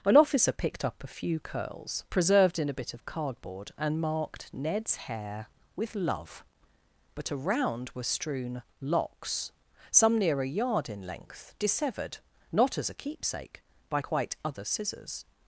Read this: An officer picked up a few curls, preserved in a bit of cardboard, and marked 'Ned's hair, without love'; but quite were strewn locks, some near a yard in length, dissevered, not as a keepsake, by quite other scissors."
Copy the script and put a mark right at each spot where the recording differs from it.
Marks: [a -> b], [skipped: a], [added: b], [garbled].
An officer picked up a few curls, preserved in a bit of cardboard, and marked 'Ned's hair, [without -> with] love'; but [quite -> around] were strewn locks, some near a yard in length, dissevered, not as a keepsake, by quite other scissors."